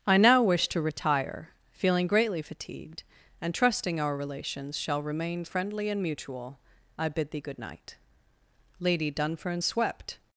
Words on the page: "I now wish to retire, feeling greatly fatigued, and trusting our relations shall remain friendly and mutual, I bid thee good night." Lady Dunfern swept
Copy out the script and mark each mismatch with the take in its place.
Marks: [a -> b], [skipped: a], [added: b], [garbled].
"I now wish to retire, feeling greatly fatigued, and trusting our relations shall remain friendly and mutual, I bid thee good night." Lady Dunfern swept